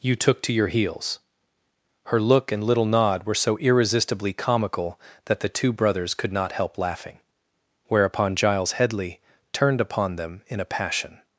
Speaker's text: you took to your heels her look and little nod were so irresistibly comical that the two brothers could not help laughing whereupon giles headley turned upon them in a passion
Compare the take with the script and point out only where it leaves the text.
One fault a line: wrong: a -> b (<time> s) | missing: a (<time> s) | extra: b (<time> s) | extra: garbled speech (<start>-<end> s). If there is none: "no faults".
no faults